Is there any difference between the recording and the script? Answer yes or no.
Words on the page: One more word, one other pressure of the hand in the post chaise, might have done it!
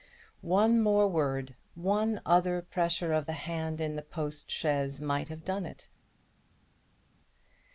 no